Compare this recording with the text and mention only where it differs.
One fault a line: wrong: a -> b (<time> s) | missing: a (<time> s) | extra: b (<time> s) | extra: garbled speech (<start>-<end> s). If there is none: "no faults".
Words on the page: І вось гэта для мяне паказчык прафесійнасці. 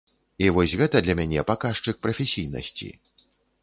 no faults